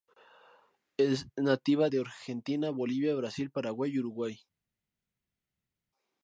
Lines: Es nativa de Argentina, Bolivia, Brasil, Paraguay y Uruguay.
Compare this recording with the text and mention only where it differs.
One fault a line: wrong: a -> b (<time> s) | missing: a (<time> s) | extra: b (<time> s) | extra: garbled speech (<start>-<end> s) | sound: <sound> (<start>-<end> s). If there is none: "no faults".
no faults